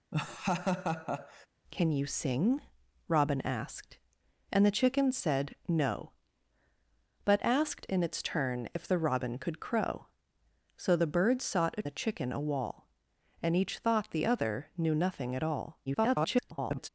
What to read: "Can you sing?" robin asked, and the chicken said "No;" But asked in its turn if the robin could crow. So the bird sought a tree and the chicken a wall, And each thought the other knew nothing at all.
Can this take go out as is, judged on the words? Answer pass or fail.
fail